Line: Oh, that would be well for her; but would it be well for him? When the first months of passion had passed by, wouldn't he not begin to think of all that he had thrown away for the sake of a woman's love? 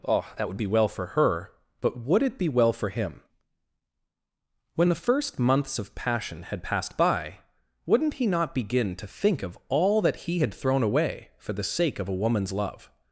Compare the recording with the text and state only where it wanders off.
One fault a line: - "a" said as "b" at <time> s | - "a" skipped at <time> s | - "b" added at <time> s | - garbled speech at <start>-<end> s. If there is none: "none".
none